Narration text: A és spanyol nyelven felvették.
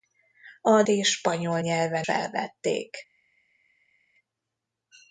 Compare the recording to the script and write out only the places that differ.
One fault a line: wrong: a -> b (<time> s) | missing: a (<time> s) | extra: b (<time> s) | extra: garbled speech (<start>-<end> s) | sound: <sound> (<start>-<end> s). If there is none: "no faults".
no faults